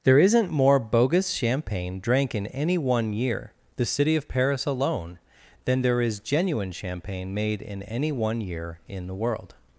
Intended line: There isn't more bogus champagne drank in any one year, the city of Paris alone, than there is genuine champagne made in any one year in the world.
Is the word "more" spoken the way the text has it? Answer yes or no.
yes